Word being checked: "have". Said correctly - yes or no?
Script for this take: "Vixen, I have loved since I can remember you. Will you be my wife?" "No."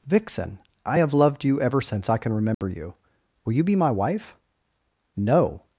yes